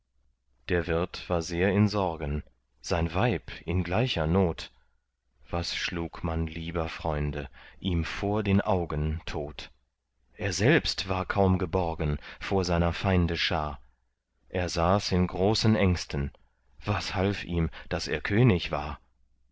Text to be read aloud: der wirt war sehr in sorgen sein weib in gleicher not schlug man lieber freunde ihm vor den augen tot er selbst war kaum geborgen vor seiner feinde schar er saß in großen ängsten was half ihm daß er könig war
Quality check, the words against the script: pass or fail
fail